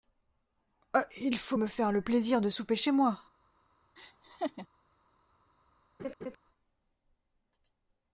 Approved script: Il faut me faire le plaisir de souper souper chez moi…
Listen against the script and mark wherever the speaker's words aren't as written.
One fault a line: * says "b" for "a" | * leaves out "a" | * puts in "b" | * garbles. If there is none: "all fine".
* leaves out "souper"